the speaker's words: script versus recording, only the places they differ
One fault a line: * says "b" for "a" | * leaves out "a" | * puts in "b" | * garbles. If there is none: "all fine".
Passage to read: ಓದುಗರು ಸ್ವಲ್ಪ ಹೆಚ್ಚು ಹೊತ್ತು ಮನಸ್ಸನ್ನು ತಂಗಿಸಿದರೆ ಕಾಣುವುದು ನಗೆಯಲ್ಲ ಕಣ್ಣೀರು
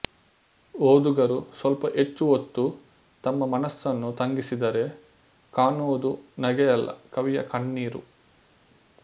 * puts in "ತಮ್ಮ"
* puts in "ಕವಿಯ"